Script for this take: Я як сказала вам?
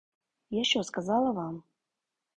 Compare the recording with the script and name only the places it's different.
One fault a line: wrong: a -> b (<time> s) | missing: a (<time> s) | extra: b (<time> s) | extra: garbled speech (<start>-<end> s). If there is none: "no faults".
wrong: як -> що (0.6 s)